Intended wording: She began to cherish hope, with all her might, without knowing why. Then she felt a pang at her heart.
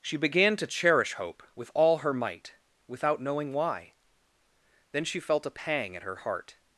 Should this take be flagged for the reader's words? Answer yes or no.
no